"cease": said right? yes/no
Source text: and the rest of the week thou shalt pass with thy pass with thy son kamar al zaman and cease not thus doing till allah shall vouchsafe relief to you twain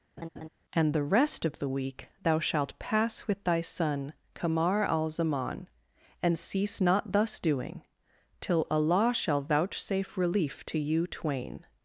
yes